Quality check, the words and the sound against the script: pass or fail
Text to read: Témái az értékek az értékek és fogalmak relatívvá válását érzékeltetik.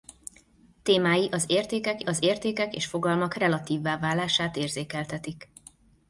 pass